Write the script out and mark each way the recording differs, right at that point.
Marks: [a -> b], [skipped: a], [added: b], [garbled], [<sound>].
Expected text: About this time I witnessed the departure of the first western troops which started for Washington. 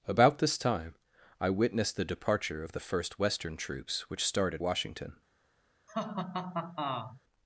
About this time I witnessed the departure of the first western troops which started [skipped: for] Washington. [laugh]